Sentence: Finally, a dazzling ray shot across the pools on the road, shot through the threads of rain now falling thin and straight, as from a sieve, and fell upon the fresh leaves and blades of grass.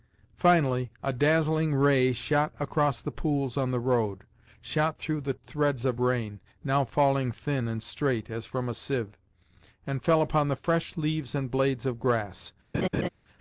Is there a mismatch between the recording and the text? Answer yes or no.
no